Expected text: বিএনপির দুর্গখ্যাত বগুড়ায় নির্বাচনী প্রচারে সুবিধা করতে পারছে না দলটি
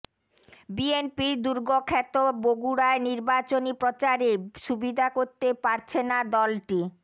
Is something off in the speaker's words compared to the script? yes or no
no